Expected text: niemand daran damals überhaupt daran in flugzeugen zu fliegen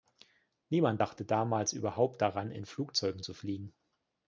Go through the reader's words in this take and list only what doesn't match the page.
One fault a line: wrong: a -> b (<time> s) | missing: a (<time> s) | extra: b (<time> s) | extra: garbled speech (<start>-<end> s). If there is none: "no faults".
wrong: daran -> dachte (1.0 s)